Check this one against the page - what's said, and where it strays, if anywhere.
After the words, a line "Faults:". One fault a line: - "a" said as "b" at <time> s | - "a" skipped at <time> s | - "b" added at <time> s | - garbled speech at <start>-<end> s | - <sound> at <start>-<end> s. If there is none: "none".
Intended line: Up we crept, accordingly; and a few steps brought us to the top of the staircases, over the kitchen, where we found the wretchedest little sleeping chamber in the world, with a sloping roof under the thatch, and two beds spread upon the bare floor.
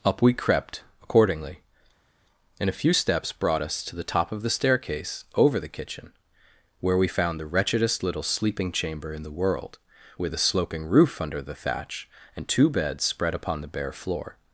Up we crept, accordingly; and a few steps brought us to the top of the staircase, over the kitchen, where we found the wretchedest little sleeping chamber in the world, with a sloping roof under the thatch, and two beds spread upon the bare floor.
Faults:
- "staircases" said as "staircase" at 4.5 s